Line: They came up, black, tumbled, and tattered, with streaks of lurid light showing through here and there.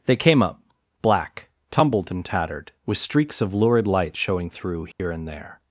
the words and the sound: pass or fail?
fail